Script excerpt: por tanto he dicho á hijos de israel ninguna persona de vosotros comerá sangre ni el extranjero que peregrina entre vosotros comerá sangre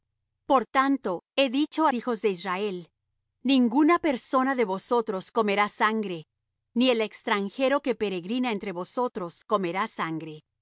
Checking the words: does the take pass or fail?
pass